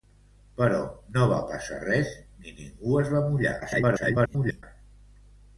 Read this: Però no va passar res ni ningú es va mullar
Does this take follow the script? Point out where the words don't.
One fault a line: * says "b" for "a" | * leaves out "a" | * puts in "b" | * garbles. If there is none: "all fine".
* garbles